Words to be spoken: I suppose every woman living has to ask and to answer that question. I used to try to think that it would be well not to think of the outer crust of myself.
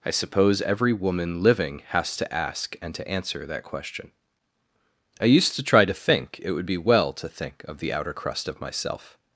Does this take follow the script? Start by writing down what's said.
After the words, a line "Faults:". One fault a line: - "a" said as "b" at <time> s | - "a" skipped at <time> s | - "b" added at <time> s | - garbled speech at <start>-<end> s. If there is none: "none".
I suppose every woman living has to ask and to answer that question. I used to try to think it would be well to think of the outer crust of myself.
Faults:
- "that" skipped at 6.4 s
- "not" skipped at 7.1 s